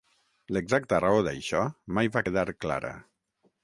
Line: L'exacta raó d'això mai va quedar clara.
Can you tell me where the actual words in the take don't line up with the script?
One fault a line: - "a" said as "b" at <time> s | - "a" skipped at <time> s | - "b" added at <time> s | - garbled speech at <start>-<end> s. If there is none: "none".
none